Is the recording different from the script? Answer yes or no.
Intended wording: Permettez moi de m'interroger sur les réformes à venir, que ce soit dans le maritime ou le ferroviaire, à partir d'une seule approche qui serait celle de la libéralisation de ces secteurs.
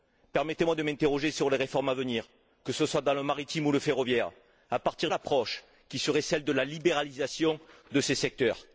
yes